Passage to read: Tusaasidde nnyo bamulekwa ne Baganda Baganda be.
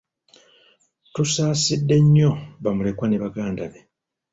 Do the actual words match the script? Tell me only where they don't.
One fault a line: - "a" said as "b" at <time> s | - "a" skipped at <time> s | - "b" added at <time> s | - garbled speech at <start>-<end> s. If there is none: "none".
- "Baganda" skipped at 3.6 s